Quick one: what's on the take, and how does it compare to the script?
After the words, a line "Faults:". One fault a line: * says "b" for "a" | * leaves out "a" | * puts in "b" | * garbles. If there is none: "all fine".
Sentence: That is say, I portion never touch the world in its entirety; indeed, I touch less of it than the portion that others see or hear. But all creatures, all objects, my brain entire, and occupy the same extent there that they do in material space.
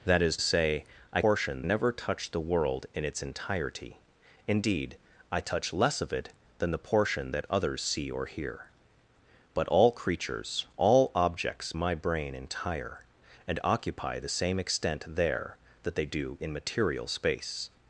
That is say, I portion never touch the world in its entirety; indeed, I touch less of it than the portion that others see or hear. But all creatures, all objects, my brain entire, and occupy the same extent there that they do in material space.
Faults:
all fine